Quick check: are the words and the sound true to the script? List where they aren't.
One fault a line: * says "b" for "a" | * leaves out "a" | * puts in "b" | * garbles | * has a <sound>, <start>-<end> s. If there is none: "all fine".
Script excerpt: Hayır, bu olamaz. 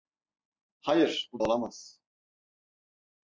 all fine